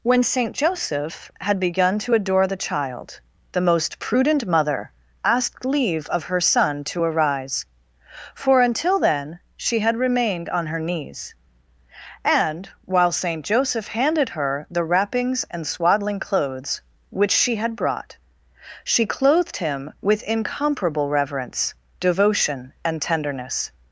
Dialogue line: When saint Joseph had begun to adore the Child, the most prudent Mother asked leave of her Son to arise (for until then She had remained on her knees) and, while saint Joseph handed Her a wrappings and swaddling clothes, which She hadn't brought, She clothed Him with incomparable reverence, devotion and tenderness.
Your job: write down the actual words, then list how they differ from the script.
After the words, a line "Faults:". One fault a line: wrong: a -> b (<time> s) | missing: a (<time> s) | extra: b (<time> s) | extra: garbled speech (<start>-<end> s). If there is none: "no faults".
When saint Joseph had begun to adore the Child, the most prudent Mother asked leave of her Son to arise (for until then She had remained on her knees) and, while saint Joseph handed Her the wrappings and swaddling clothes, which She had brought, She clothed Him with incomparable reverence, devotion and tenderness.
Faults:
wrong: a -> the (14.7 s)
wrong: hadn't -> had (17.6 s)